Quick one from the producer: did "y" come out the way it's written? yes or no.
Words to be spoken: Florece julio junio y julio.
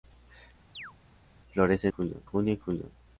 yes